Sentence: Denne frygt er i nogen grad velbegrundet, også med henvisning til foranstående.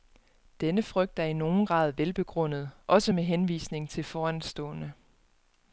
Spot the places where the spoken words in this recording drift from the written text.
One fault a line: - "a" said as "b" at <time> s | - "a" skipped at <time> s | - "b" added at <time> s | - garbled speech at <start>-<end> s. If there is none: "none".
none